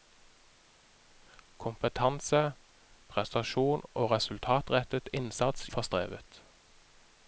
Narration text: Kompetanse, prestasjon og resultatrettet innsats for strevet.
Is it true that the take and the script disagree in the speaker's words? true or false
false